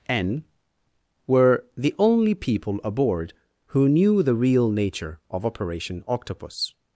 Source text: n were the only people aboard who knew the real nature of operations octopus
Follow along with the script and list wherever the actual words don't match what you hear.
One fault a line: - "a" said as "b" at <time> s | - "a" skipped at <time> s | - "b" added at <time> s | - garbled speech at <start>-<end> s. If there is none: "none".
- "operations" said as "operation" at 5.5 s